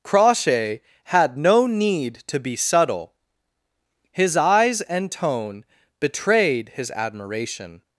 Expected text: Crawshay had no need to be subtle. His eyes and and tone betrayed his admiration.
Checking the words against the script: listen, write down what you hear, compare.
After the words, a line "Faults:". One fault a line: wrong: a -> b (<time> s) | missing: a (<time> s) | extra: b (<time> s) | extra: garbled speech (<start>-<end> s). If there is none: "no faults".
Crawshay had no need to be subtle. His eyes and tone betrayed his admiration.
Faults:
missing: and (5.1 s)